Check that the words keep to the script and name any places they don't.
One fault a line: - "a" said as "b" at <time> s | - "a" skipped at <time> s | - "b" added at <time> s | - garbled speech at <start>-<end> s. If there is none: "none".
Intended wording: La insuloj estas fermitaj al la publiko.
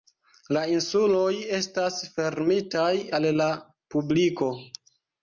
none